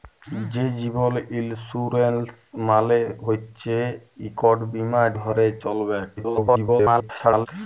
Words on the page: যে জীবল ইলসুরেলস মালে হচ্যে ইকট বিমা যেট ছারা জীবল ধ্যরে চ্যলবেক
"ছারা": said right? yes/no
no